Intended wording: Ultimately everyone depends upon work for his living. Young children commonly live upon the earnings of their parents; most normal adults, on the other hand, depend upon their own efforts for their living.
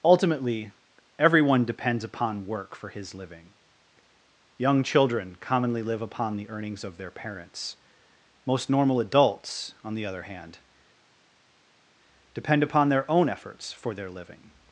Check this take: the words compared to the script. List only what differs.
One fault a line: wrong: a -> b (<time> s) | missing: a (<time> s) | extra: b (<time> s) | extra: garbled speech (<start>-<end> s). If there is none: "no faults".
no faults